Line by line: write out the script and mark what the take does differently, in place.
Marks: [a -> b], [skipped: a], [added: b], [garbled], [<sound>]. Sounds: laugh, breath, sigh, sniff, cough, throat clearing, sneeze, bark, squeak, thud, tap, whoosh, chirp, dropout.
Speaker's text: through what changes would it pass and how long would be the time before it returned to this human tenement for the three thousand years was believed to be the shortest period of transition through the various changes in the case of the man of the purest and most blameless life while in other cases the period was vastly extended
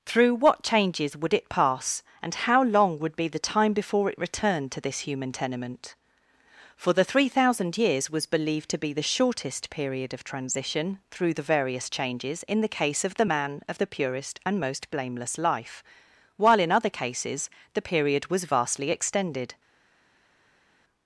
through what changes would it pass and how long would be the time before it returned to this human tenement for the three thousand years was believed to be the shortest period of transition through the various changes in the case of the man of the purest and most blameless life while in other cases the period was vastly extended